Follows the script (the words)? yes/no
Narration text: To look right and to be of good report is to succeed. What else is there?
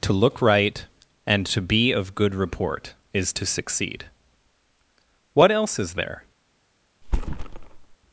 yes